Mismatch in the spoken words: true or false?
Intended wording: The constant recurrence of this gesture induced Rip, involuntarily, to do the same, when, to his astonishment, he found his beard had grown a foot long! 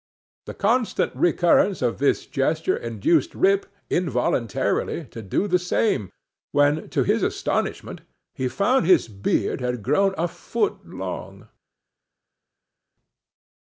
false